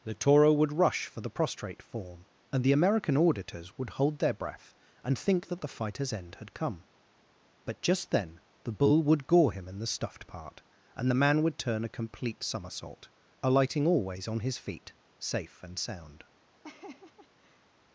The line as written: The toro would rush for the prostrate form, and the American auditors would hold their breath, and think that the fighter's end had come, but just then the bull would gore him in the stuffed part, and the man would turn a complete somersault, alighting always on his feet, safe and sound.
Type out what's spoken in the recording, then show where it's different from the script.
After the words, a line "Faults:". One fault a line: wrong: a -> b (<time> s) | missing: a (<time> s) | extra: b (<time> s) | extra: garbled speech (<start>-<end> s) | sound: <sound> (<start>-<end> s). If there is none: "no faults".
The toro would rush for the prostrate form, and the American auditors would hold their breath, and think that the fighter's end had come, but just then the bull would gore him in the stuffed part, and the man would turn a complete somersault, alighting always on his feet, safe and sound.
Faults:
sound: laugh (16.6-17.7 s)